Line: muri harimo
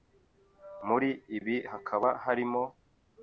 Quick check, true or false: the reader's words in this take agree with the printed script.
false